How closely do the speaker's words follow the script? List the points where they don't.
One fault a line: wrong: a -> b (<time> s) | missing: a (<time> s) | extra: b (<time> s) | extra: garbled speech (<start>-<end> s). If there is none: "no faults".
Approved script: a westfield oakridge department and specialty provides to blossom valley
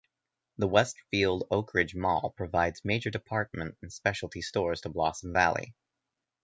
wrong: a -> the (0.6 s)
extra: mall provides major (1.9 s)
wrong: provides -> stores (4.4 s)